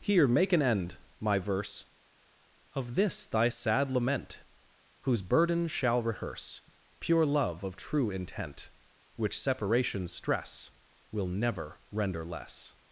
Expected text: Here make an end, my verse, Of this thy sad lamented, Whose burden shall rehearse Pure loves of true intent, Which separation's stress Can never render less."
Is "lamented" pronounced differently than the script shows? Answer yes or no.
yes